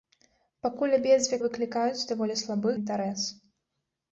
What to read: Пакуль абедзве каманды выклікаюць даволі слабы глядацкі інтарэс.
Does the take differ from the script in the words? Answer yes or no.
yes